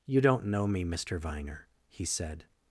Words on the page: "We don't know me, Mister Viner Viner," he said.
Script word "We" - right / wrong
wrong